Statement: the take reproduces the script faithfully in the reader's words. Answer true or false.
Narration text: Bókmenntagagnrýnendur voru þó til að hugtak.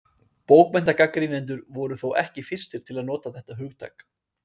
false